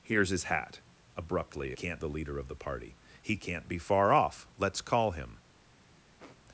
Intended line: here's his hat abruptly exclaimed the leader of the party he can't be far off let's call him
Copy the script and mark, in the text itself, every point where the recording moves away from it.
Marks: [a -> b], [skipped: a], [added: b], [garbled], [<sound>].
here's his hat abruptly [exclaimed -> can't] the leader of the party he can't be far off let's call him [sniff]